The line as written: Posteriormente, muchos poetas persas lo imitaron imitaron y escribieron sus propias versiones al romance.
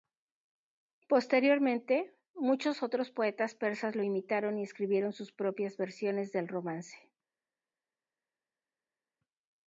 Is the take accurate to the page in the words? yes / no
no